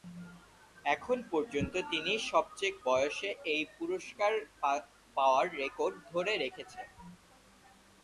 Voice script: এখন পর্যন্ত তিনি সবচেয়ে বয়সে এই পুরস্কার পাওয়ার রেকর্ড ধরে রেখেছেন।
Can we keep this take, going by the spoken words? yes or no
yes